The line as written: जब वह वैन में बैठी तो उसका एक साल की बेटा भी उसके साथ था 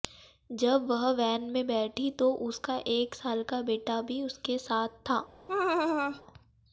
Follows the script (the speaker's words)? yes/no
no